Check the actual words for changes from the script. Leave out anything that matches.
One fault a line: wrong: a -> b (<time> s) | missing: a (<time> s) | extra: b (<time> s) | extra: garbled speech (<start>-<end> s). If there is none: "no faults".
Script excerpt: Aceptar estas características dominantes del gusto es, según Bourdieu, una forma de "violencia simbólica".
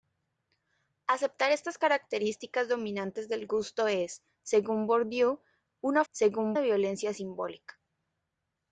wrong: forma -> según (6.1 s)